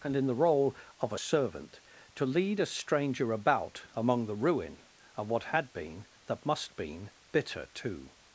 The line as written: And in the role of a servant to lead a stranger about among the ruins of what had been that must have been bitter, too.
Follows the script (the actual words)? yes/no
no